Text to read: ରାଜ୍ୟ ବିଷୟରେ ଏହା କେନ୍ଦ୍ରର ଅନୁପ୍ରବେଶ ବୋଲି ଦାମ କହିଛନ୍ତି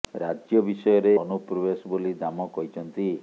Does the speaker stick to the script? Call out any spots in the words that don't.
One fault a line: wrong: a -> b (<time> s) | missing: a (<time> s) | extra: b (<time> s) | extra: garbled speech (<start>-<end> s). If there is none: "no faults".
missing: ଏହା କେନ୍ଦ୍ରର (1.1 s)